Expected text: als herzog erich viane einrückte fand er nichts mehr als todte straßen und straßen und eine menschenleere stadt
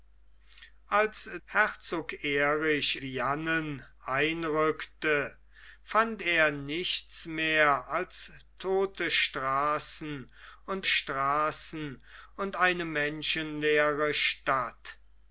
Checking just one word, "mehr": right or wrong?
right